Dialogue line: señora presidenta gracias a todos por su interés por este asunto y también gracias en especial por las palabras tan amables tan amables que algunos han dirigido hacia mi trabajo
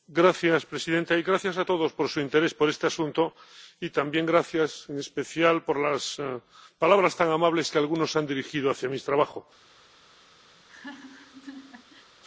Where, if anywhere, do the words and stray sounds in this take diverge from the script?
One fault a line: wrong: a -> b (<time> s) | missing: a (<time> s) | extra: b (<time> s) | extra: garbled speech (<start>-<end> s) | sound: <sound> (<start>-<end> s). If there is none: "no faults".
missing: tan amables (7.7 s)
sound: laugh (10.6-12.1 s)